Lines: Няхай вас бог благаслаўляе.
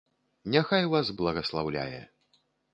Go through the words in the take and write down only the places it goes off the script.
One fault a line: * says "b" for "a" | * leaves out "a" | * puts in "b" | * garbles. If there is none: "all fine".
* leaves out "бог"